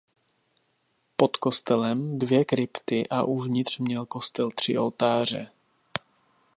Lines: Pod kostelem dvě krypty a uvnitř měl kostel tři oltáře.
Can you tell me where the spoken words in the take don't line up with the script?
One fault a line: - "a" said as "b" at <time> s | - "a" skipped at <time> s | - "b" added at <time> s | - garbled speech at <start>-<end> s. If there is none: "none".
none